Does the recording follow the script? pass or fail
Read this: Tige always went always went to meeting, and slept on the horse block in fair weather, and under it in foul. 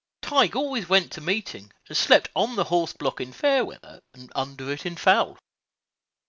fail